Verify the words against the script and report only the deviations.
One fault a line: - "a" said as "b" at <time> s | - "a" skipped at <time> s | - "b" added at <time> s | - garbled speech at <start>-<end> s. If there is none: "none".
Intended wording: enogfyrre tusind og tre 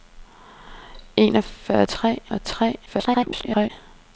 - "tusind" said as "tre" at 1.9 s
- garbled speech at 2.8-3.7 s